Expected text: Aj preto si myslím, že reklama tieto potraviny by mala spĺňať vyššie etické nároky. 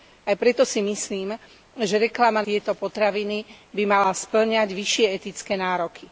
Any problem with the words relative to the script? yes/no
no